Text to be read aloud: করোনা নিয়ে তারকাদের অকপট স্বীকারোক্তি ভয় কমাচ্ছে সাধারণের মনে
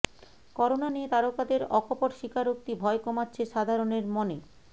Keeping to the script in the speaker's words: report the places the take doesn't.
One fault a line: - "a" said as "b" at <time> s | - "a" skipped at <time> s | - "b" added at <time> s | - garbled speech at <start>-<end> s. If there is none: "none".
none